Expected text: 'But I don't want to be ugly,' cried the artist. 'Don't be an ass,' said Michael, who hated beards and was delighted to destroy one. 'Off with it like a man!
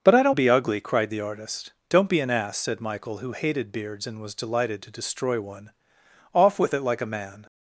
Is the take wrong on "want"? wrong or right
wrong